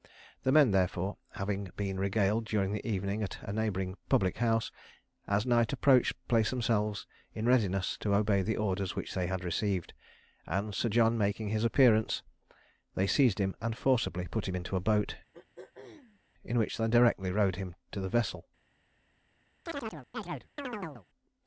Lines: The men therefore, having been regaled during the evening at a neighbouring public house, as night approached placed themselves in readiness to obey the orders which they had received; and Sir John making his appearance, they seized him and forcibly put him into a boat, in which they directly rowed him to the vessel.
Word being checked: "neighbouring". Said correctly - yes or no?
yes